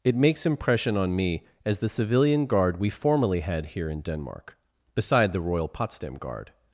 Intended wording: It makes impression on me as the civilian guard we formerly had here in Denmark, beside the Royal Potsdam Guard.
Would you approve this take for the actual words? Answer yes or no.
yes